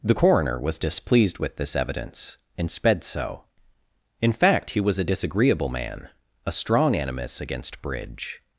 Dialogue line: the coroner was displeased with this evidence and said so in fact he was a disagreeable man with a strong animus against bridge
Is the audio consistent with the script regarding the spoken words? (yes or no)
no